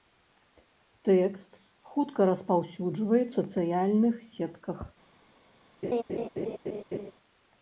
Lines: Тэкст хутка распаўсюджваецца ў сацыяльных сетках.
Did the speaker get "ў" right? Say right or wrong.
wrong